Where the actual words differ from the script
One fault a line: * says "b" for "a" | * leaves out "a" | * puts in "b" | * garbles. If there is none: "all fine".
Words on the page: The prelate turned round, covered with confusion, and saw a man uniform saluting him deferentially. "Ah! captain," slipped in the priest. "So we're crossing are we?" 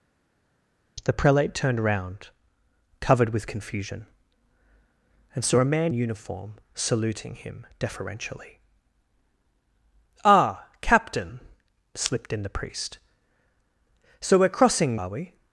all fine